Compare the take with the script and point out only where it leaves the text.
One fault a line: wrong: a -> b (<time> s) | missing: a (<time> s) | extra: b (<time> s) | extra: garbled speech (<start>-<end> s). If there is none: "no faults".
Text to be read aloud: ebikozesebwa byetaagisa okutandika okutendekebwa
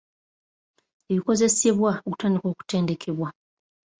missing: byetaagisa (1.9 s)